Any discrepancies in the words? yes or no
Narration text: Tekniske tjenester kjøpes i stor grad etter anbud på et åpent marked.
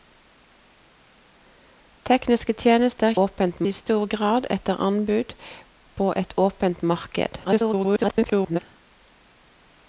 yes